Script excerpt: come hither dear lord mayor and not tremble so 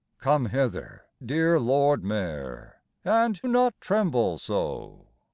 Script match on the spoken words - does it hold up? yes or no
yes